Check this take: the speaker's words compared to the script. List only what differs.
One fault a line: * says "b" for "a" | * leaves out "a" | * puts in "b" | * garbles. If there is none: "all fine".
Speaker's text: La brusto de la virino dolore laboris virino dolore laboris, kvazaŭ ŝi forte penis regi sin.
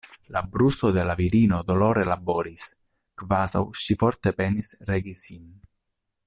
* leaves out "virino dolore laboris"